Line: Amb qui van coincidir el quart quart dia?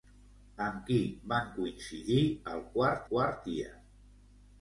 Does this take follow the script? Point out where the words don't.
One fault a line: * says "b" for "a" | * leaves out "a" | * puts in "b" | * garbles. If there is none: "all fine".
all fine